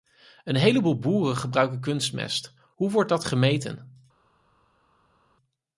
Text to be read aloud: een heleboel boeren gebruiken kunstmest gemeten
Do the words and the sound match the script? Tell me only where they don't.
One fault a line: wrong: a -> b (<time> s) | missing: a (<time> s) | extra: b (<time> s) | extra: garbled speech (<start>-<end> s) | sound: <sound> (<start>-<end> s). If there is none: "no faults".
extra: hoe wordt dat (2.7 s)